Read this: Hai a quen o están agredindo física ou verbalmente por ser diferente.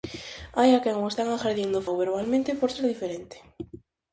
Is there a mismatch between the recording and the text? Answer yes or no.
yes